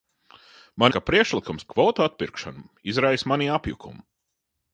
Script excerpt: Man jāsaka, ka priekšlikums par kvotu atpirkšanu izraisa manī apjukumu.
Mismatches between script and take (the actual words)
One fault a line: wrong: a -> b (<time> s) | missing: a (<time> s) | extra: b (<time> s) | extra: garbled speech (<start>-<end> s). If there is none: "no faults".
missing: jāsaka (0.9 s)
missing: par (1.6 s)